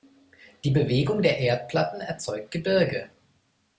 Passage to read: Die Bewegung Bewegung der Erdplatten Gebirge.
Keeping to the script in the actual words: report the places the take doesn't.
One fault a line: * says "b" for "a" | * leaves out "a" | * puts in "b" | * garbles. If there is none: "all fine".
* leaves out "Bewegung"
* puts in "erzeugt"